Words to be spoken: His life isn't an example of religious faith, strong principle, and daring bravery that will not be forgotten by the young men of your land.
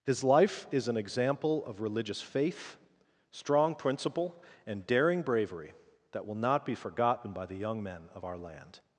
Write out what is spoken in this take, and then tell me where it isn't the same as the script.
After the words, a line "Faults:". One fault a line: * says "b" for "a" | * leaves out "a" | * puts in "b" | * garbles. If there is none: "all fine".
His life is an example of religious faith, strong principle, and daring bravery that will not be forgotten by the young men of our land.
Faults:
* says "is" for "isn't"
* says "our" for "your"